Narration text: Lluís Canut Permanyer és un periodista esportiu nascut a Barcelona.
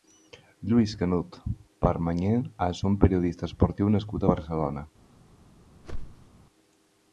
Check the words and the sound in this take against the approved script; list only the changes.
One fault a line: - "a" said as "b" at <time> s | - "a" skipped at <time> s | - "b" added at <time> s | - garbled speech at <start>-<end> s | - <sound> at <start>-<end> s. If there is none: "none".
- whoosh at 5.8-6.3 s